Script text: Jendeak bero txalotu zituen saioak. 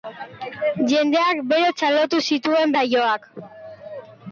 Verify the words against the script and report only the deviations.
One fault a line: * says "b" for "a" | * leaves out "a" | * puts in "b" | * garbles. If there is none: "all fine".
all fine